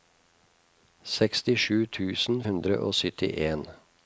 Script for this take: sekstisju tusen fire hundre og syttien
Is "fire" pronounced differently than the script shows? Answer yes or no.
yes